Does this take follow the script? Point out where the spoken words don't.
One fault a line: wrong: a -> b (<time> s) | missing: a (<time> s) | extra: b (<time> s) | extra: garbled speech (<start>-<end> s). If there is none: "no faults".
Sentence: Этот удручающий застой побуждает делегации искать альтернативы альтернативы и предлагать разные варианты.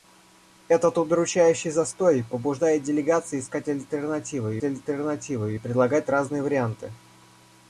no faults